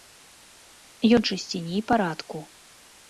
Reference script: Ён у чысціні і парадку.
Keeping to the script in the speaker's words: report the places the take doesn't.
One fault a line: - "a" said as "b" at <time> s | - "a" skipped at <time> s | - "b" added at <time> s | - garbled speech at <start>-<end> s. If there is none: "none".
none